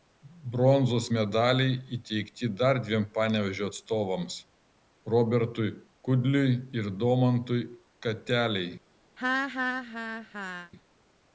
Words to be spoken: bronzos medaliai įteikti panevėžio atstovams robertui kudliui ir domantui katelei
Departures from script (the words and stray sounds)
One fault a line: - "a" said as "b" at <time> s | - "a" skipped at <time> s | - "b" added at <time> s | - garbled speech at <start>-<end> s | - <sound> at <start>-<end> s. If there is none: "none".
- "dar dviem" added at 2.6 s
- laugh at 9.2-10.7 s